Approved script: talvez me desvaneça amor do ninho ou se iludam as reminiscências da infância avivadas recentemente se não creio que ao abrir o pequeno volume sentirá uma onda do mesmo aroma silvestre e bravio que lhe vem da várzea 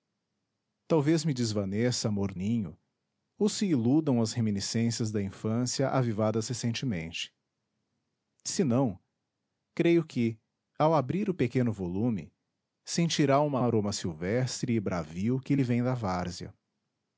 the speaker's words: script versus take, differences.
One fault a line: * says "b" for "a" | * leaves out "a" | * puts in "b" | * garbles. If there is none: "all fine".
* leaves out "do"
* leaves out "onda do mesmo"